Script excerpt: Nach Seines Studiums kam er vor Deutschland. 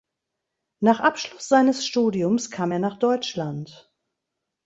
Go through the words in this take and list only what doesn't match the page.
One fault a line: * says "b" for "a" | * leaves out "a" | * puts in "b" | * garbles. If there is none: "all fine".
* puts in "Abschluss"
* says "nach" for "vor"